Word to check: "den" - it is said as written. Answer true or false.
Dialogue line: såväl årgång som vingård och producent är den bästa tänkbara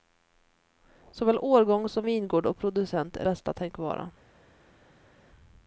false